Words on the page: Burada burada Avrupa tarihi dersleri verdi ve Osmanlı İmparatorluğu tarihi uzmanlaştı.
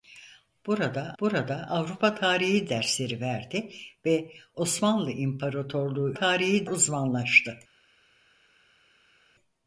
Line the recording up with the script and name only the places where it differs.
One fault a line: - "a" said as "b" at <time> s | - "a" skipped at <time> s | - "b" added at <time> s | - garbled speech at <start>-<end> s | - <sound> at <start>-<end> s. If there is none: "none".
none